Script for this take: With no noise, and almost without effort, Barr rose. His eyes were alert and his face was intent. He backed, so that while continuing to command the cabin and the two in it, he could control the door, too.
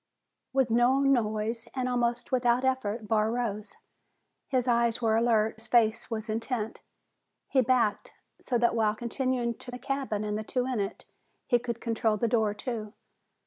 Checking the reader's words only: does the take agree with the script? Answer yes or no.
no